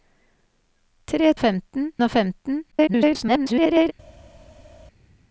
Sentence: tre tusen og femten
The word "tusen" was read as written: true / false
false